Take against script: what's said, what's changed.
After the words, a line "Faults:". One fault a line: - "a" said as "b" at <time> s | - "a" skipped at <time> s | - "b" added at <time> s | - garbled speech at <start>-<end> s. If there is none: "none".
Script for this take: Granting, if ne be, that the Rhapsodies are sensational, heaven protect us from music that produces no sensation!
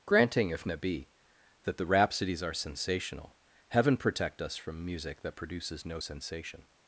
Granting, if ne be, that the Rhapsodies are sensational, heaven protect us from music that produces no sensation!
Faults:
none